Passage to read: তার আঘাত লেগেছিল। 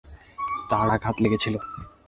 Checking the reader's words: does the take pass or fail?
pass